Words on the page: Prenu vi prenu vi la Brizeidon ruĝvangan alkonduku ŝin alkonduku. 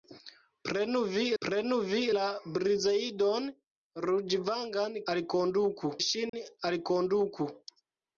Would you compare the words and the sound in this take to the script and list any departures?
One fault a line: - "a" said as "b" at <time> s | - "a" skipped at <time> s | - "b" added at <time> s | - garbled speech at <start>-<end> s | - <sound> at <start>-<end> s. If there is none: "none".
- dropout at 6.3-6.3 s